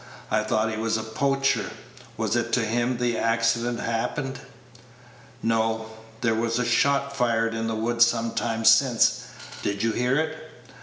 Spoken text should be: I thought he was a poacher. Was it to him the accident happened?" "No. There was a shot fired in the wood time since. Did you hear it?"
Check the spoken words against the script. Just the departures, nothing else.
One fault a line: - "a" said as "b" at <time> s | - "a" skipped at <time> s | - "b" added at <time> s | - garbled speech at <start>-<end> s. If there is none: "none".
- "some" added at 8.0 s